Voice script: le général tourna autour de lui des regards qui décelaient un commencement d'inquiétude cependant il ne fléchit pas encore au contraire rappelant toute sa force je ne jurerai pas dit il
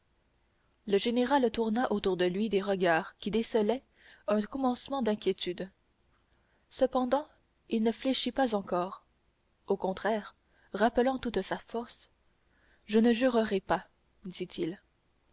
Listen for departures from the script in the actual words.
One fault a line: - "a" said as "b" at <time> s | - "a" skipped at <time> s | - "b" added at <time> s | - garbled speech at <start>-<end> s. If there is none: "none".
none